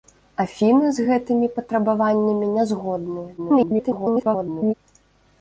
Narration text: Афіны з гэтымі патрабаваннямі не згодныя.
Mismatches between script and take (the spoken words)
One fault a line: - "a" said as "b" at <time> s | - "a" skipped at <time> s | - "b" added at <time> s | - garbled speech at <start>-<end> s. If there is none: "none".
- garbled speech at 3.4-4.7 s